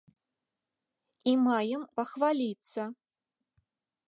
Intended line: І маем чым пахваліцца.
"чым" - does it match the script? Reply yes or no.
no